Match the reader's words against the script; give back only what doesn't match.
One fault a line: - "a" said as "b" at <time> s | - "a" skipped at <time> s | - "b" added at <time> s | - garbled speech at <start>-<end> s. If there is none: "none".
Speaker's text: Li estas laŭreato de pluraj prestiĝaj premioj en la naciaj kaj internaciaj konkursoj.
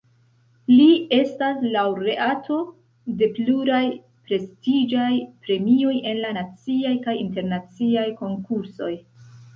none